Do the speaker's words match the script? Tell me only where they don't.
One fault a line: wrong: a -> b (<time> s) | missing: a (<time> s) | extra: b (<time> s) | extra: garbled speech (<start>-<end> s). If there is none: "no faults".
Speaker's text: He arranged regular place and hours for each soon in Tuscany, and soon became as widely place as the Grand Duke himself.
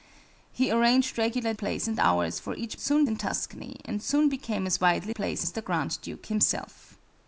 no faults